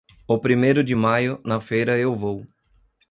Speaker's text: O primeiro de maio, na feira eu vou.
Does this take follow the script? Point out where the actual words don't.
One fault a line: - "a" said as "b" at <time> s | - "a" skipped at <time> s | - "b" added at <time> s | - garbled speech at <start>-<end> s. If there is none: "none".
none